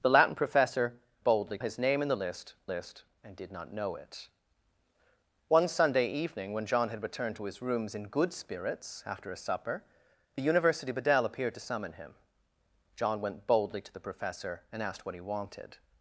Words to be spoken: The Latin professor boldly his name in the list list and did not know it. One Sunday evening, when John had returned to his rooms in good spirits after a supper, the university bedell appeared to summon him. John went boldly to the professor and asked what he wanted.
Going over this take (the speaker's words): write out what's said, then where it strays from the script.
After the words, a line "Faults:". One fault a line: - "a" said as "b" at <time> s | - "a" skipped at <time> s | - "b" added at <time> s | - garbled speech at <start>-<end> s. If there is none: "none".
The Latin professor boldly his name in the list list and did not know it. One Sunday evening, when John had returned to his rooms in good spirits after a supper, the university bedell appeared to summon him. John went boldly to the professor and asked what he wanted.
Faults:
none